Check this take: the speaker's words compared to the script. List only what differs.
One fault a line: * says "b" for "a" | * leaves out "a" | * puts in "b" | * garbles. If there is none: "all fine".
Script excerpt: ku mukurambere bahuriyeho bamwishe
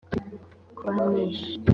* leaves out "mukurambere bahuriyeho"